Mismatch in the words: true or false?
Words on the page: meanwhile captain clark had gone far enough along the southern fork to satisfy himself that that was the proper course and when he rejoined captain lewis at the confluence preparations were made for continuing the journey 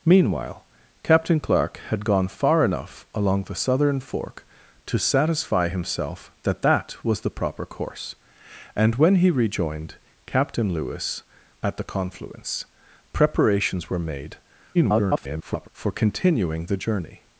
true